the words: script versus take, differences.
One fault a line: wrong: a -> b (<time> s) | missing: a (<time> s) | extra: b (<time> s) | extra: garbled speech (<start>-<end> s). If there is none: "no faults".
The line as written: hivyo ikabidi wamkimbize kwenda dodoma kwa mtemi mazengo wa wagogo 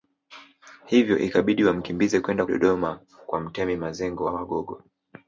no faults